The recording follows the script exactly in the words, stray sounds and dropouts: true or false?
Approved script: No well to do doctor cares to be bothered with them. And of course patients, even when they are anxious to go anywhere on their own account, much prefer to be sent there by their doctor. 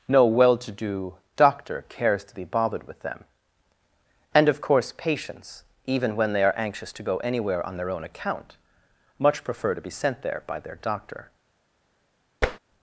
false